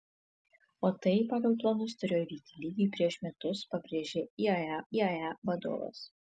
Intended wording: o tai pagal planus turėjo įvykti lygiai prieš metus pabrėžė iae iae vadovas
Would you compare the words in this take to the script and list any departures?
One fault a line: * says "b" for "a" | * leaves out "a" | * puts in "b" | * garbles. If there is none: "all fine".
all fine